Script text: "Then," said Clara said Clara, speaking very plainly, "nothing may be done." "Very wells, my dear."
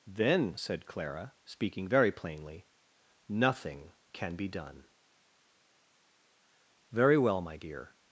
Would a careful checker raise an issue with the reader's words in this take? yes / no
yes